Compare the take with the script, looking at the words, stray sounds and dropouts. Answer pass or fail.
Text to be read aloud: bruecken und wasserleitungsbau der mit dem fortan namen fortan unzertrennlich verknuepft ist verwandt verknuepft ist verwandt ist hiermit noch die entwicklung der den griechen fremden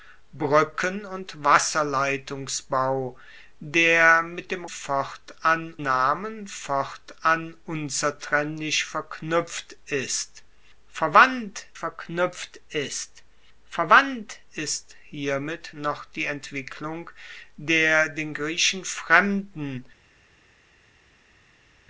pass